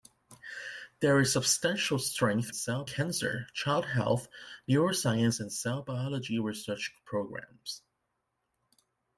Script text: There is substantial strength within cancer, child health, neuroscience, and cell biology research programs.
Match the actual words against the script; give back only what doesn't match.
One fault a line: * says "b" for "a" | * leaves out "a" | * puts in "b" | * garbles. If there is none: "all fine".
* says "cell" for "within"